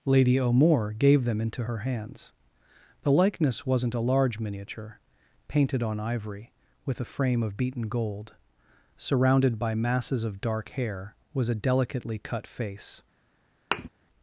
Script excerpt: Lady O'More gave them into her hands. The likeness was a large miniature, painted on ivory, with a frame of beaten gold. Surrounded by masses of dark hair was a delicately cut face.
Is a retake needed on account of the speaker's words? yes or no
yes